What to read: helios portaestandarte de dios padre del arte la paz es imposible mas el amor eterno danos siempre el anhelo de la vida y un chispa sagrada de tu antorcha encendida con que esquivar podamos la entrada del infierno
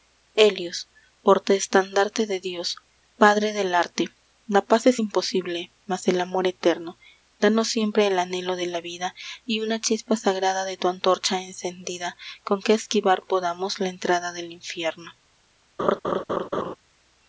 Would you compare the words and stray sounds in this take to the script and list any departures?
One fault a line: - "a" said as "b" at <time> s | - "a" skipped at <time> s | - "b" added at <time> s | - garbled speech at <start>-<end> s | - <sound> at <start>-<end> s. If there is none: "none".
- "un" said as "una" at 9.6 s
- laugh at 15.8-16.8 s